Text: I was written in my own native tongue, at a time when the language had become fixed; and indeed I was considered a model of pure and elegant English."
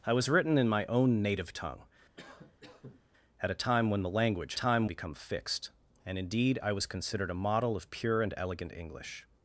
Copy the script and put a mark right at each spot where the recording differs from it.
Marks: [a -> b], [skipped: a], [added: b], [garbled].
I was written in my own native tongue, at a time when the language [had -> time] become fixed; and indeed I was considered a model of pure and elegant English."